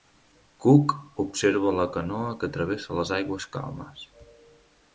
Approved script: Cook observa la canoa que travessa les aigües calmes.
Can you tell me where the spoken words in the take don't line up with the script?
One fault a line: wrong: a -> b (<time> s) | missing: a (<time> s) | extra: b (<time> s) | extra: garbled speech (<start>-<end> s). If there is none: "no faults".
no faults